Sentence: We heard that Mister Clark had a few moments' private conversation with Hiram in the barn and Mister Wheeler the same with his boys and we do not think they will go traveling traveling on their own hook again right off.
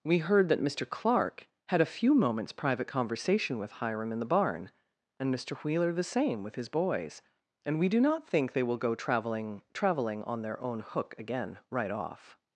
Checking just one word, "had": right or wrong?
right